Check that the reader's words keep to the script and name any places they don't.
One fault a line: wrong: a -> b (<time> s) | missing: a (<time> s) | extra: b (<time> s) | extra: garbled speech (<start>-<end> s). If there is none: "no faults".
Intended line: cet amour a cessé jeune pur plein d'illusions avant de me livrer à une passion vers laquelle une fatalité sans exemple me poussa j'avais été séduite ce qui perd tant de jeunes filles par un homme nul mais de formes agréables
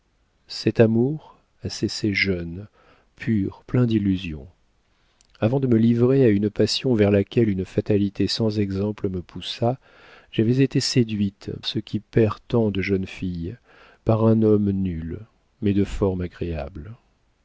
no faults